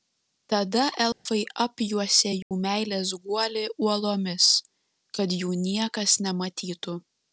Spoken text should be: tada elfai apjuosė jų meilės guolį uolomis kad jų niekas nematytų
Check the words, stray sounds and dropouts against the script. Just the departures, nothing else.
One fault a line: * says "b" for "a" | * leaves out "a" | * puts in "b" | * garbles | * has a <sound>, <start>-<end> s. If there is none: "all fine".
* has a dropout, 1.1-1.3 s
* has a dropout, 2.4-2.5 s